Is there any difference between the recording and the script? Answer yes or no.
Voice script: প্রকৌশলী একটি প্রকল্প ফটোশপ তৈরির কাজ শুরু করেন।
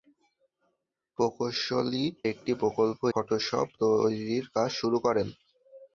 no